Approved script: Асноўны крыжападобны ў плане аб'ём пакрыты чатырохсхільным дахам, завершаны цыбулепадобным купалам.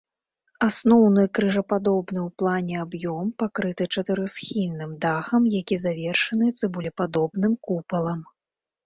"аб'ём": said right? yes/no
yes